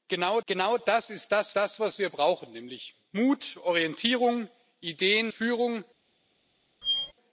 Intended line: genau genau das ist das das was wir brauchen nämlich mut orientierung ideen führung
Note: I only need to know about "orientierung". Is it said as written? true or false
true